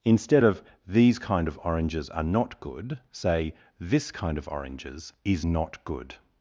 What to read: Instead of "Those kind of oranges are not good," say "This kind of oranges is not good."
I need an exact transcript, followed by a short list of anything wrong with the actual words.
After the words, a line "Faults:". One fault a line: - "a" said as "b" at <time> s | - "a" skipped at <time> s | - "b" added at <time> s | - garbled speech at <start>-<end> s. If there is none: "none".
Instead of "These kind of oranges are not good," say "This kind of oranges is not good."
Faults:
- "Those" said as "These" at 0.9 s